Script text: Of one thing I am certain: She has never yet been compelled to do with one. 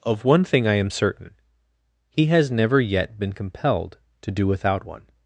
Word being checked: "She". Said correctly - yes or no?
no